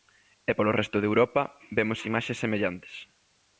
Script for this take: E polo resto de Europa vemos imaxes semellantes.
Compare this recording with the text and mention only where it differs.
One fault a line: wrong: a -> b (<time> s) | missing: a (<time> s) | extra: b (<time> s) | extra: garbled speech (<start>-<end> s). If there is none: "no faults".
no faults